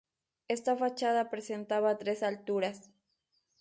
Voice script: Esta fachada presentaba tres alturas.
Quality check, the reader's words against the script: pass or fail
pass